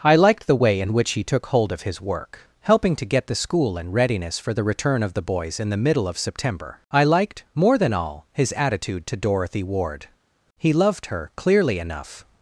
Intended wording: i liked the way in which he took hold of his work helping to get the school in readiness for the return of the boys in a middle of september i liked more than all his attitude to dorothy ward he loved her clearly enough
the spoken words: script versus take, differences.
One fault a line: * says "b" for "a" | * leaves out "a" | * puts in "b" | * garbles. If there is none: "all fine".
* says "the" for "a"